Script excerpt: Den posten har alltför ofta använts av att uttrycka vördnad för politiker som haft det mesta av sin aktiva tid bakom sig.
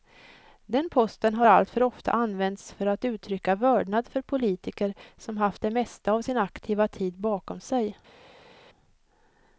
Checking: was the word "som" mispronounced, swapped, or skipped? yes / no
no